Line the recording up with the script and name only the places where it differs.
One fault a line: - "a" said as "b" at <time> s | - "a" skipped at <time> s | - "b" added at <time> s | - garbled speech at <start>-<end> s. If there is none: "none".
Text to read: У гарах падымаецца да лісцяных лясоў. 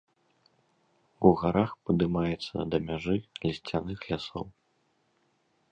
- "мяжы" added at 2.9 s